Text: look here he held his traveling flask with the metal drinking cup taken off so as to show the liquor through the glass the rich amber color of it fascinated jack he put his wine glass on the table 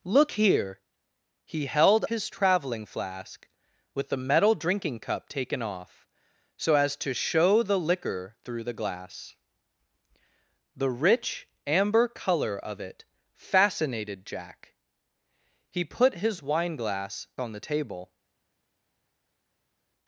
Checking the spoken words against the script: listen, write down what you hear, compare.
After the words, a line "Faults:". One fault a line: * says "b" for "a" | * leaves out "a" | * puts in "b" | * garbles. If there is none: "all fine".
look here he held his traveling flask with the metal drinking cup taken off so as to show the liquor through the glass the rich amber color of it fascinated jack he put his wine glass on the table
Faults:
all fine